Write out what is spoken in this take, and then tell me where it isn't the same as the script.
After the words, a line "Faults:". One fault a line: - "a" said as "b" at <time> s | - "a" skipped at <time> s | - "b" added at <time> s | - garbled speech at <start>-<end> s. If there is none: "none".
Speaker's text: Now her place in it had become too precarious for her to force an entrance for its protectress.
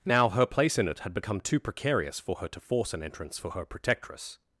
Now her place in it had become too precarious for her to force an entrance for her protectress.
Faults:
- "its" said as "her" at 3.5 s